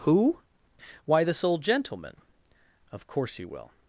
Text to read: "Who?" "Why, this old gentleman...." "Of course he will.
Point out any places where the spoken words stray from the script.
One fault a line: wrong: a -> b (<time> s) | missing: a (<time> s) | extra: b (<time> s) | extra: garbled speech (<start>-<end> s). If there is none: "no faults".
no faults